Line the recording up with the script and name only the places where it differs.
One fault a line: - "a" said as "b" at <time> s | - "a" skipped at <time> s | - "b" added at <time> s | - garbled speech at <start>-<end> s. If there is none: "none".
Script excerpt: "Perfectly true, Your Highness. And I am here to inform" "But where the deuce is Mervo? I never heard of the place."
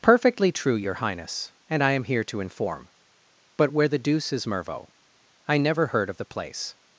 none